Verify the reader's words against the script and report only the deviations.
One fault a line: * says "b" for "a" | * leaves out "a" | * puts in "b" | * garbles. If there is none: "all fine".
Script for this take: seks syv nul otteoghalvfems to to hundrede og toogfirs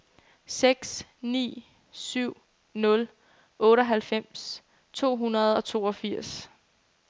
* puts in "ni"
* leaves out "to"